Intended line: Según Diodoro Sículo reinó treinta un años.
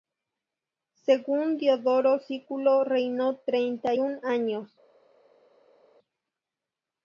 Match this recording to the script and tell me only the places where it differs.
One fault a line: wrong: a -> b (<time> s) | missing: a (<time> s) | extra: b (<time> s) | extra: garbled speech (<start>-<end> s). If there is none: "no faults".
no faults